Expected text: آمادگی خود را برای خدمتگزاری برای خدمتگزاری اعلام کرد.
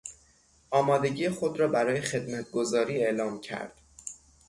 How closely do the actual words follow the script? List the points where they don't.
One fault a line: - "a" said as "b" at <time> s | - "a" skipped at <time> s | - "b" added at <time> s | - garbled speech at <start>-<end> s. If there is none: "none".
- "برای خدمتگزاری" skipped at 3.0 s